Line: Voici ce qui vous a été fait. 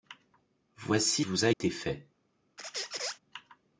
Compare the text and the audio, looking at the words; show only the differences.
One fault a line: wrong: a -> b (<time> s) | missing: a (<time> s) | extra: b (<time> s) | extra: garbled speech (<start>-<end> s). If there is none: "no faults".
missing: ce qui (1.2 s)